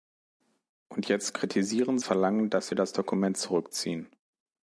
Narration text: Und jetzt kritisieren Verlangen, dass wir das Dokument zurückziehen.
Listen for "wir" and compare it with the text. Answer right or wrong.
right